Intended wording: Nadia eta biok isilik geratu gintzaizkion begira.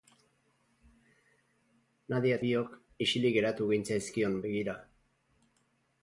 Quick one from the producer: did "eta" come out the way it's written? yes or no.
no